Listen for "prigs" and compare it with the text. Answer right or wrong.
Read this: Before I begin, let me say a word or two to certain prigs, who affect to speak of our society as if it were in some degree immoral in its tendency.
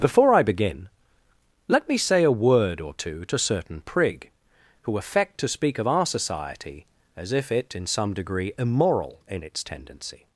wrong